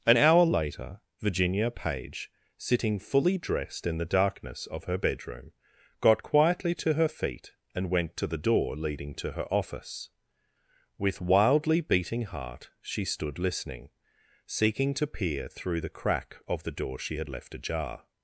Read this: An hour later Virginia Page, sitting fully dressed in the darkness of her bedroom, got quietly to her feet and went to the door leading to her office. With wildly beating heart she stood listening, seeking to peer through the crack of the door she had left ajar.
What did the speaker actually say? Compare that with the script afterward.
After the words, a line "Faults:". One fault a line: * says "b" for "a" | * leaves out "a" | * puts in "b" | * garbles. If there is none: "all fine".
An hour later Virginia Page, sitting fully dressed in the darkness of her bedroom, got quietly to her feet and went to the door leading to her office. With wildly beating heart she stood listening, seeking to peer through the crack of the door she had left ajar.
Faults:
all fine